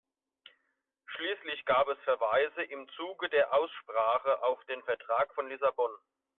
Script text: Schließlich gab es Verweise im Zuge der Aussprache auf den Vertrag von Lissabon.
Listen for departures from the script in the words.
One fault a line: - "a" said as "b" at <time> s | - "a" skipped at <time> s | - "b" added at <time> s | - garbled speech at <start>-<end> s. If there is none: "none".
none